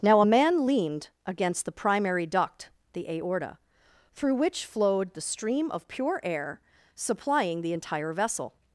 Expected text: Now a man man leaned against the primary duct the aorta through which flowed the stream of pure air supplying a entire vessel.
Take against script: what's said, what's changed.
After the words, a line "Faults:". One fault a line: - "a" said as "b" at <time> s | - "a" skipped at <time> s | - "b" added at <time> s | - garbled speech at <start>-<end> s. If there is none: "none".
Now a man leaned against the primary duct the aorta through which flowed the stream of pure air supplying the entire vessel.
Faults:
- "man" skipped at 0.6 s
- "a" said as "the" at 7.6 s